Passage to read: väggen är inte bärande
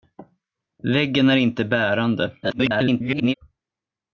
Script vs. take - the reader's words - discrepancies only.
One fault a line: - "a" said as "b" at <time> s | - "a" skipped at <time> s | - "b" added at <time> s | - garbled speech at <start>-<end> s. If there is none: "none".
- garbled speech at 2.4-3.3 s